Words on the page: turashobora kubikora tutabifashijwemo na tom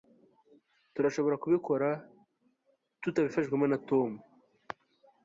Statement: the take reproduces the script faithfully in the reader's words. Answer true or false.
true